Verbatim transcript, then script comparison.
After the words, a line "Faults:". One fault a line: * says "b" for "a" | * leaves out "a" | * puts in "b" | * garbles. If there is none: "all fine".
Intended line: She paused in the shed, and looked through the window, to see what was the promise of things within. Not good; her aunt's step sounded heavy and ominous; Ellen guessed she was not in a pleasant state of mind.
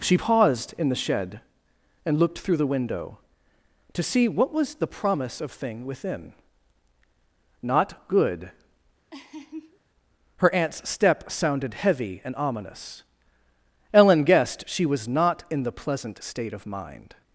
She paused in the shed, and looked through the window, to see what was the promise of thing within. Not good; her aunt's step sounded heavy and ominous; Ellen guessed she was not in the pleasant state of mind.
Faults:
* says "thing" for "things"
* says "the" for "a"